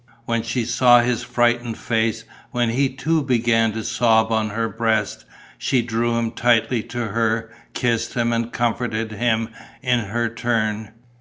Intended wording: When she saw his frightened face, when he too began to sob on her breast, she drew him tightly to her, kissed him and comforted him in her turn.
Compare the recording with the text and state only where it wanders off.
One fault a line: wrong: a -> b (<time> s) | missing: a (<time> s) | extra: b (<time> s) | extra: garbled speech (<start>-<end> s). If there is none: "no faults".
no faults